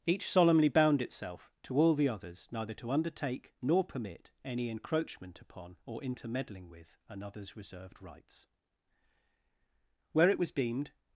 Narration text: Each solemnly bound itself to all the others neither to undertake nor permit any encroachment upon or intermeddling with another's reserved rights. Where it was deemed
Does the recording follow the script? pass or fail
pass